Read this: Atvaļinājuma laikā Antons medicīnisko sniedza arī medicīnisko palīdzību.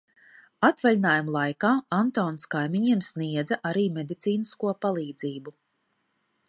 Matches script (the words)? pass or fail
fail